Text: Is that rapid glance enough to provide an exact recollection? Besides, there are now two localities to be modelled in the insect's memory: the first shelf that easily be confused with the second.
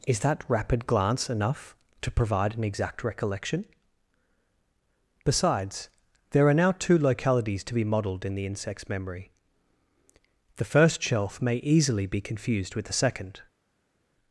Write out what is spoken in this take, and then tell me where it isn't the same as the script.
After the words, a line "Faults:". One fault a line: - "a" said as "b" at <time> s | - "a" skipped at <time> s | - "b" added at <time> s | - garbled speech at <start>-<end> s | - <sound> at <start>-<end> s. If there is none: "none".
Is that rapid glance enough to provide an exact recollection? Besides, there are now two localities to be modelled in the insect's memory: the first shelf may easily be confused with the second.
Faults:
- "that" said as "may" at 11.4 s